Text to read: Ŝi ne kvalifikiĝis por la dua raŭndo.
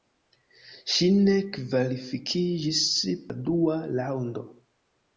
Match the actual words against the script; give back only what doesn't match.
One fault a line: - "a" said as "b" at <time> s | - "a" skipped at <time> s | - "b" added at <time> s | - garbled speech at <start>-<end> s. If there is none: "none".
- "por" skipped at 2.8 s